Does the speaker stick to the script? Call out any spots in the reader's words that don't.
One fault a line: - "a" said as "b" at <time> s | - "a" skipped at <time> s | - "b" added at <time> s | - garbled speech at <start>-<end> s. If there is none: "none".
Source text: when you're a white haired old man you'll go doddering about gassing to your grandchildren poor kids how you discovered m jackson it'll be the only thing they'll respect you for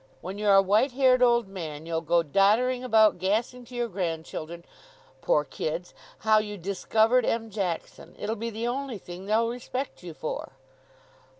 none